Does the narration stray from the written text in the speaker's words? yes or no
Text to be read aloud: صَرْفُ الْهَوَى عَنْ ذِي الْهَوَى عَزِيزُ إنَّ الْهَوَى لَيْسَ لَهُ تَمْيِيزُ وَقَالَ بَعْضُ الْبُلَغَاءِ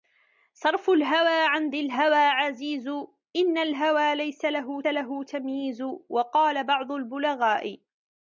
yes